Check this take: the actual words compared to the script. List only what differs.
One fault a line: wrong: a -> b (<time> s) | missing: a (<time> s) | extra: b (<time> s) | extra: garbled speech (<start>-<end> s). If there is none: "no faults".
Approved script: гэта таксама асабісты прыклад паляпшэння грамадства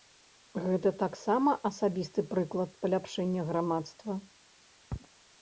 no faults